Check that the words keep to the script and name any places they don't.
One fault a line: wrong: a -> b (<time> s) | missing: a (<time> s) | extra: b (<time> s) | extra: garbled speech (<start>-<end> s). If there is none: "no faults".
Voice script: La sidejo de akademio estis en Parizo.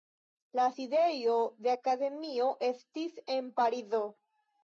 no faults